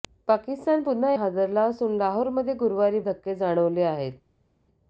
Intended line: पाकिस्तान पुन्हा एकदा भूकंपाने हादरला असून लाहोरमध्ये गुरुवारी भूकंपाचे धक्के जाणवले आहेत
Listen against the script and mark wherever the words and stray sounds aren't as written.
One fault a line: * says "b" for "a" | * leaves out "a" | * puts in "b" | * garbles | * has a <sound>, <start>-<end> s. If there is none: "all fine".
* leaves out "एकदा भूकंपाने"
* leaves out "भूकंपाचे"